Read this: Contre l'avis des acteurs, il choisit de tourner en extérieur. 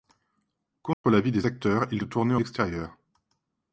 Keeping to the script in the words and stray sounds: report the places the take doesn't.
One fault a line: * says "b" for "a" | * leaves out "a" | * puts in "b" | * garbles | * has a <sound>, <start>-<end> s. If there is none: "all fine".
* has a dropout, 0.9-1.0 s
* leaves out "choisit"
* leaves out "en"